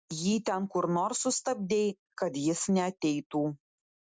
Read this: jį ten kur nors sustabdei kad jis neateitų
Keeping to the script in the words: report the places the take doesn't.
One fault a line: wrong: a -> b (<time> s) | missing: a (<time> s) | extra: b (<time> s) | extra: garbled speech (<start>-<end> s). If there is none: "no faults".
no faults